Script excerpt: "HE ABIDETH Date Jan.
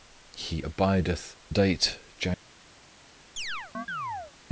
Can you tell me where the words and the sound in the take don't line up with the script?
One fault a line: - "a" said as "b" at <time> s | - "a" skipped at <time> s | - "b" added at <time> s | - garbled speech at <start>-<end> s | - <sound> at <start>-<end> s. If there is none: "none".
- chirp at 3.4-4.3 s